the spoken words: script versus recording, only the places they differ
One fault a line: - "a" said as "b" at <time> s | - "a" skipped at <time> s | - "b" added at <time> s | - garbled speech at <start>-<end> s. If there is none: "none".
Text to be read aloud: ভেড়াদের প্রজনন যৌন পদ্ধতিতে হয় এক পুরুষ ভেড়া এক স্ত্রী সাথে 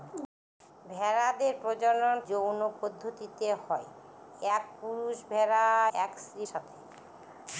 none